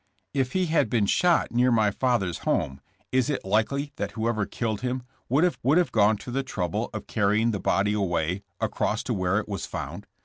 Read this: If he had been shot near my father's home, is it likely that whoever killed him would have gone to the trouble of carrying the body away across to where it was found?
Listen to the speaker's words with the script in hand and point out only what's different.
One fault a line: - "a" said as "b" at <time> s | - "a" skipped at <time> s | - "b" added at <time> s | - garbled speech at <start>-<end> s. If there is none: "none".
- "would have" added at 5.6 s